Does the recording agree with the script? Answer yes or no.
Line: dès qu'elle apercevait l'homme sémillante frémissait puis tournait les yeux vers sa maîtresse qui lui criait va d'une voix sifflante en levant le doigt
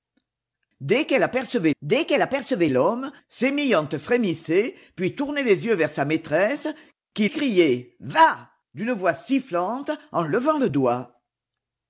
no